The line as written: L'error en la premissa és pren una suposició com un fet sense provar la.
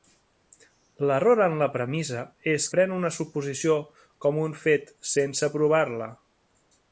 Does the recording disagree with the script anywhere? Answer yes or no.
no